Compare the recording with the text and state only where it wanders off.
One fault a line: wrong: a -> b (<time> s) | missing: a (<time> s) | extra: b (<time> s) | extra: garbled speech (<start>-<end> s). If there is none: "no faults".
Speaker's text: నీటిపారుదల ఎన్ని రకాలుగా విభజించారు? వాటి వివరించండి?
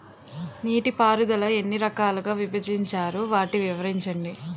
no faults